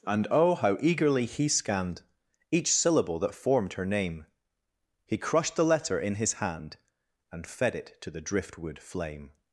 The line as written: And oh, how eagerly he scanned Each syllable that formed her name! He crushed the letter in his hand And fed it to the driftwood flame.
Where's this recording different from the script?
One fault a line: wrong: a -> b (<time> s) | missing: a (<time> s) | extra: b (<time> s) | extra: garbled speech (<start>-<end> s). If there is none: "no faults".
no faults